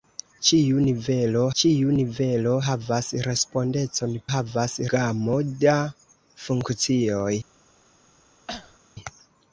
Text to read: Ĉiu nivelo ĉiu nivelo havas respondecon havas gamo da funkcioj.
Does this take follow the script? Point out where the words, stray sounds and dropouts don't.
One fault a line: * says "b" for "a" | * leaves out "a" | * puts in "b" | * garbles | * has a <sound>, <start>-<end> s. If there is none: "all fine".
* has a cough, 8.5-8.8 s